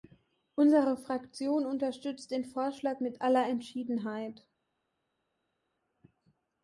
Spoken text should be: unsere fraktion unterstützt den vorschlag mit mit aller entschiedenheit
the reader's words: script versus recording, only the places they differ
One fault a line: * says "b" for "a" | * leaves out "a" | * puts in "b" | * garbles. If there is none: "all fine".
* leaves out "mit"